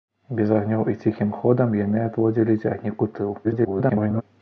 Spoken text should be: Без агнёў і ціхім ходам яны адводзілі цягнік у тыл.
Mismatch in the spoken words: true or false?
true